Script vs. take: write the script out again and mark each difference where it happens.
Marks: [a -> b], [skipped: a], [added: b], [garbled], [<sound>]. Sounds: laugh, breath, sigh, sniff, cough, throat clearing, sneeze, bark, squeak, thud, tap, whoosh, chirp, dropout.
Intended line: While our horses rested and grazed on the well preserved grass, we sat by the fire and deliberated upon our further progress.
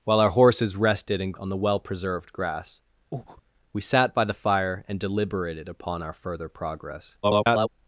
While our horses rested and [skipped: grazed] on the well preserved grass, [breath] we sat by the fire and deliberated upon our further progress. [garbled]